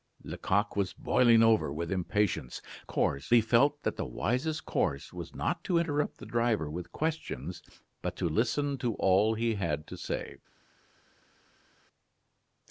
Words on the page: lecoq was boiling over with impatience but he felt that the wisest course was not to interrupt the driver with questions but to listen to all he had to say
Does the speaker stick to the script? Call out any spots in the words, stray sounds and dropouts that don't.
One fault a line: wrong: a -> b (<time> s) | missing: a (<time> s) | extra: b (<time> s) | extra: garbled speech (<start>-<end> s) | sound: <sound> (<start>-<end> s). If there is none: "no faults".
wrong: but -> course (2.9 s)